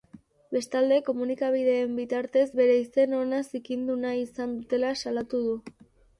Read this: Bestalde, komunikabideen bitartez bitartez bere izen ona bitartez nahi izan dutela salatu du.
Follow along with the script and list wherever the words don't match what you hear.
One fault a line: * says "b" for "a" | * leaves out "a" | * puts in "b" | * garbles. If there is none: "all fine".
* leaves out "bitartez"
* says "zikindu" for "bitartez"